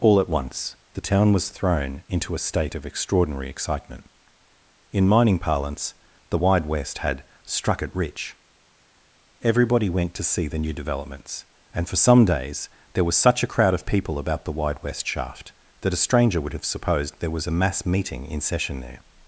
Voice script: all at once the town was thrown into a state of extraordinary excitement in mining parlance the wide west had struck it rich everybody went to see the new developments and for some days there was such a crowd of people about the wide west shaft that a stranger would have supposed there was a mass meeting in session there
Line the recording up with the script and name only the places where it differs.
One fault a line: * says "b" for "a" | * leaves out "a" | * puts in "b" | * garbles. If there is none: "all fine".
all fine